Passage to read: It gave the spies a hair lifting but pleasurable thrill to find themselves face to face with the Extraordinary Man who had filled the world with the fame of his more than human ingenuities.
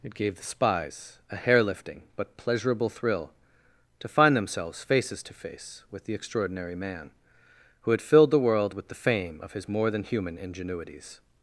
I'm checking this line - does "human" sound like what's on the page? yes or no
yes